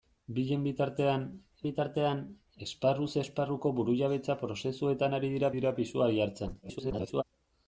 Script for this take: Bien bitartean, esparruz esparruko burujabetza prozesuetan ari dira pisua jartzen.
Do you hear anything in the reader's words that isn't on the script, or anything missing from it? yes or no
yes